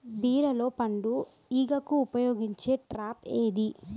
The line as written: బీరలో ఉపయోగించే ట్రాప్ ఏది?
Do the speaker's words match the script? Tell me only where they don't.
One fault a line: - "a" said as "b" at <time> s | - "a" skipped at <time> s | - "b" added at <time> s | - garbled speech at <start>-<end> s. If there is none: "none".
- "పండు ఈగకు" added at 0.7 s